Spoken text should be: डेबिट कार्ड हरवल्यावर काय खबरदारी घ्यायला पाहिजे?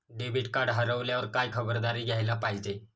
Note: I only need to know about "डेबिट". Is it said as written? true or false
true